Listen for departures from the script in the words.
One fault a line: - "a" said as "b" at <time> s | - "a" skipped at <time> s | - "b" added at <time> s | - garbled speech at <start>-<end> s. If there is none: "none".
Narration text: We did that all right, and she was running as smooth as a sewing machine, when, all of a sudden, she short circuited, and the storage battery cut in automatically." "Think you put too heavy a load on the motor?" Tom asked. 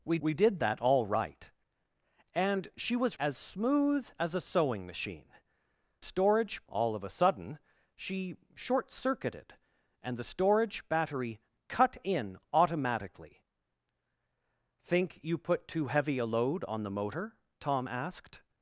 - "we" added at 0.2 s
- "running" skipped at 3.2 s
- "when" said as "storage" at 6.0 s